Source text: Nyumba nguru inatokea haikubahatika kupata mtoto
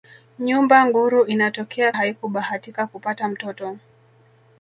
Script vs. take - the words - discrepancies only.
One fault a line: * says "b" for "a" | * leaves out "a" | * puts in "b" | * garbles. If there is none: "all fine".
all fine